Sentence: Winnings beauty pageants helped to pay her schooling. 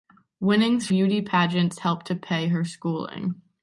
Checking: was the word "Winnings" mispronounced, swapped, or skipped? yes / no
no